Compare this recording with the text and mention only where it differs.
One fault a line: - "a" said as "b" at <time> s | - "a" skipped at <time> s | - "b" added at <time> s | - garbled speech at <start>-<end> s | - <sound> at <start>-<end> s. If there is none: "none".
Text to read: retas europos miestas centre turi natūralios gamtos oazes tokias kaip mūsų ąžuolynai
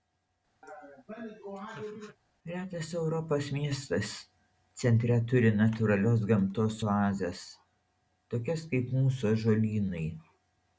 - laugh at 0.6-2.2 s